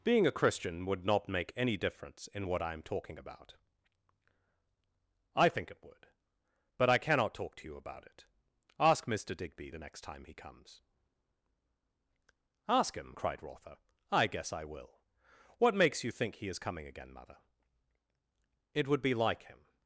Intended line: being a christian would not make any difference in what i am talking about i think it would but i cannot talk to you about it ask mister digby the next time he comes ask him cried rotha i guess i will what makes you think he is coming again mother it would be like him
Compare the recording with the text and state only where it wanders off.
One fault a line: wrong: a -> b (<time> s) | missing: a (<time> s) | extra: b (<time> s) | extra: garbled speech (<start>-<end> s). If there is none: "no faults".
no faults